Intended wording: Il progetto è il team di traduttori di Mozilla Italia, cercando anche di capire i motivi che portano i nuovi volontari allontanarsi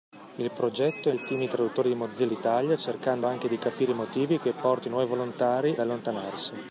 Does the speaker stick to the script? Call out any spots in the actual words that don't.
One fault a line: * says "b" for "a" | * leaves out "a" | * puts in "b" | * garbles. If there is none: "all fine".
all fine